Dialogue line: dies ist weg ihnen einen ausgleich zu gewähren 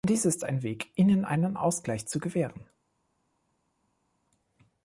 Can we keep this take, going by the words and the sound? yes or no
no